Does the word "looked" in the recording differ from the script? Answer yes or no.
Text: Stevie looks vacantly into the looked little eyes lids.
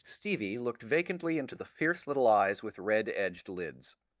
yes